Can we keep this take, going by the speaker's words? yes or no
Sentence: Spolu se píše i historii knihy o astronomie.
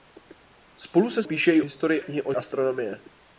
yes